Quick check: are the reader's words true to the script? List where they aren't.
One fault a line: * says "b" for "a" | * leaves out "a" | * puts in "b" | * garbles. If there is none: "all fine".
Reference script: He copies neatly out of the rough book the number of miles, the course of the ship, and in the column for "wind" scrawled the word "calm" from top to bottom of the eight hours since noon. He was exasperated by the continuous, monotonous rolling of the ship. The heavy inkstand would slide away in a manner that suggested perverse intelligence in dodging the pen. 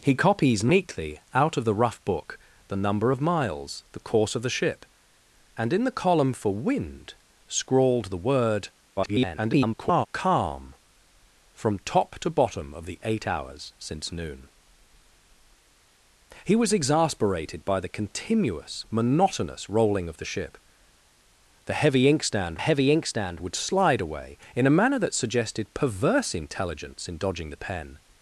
* garbles
* puts in "heavy inkstand"